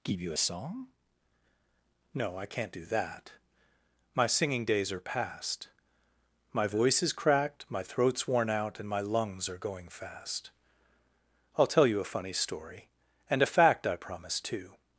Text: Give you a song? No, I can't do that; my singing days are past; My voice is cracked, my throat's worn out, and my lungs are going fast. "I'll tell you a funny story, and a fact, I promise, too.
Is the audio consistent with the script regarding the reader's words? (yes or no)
yes